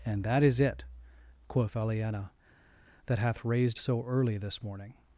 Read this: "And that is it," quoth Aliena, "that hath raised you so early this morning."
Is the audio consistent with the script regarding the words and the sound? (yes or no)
no